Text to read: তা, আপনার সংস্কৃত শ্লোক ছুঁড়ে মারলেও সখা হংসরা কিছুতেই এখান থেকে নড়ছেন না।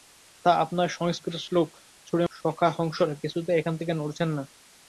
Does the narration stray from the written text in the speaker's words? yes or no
yes